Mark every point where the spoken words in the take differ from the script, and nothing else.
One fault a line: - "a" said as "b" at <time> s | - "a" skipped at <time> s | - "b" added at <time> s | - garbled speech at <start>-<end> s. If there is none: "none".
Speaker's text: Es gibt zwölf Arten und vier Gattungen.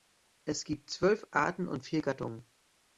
none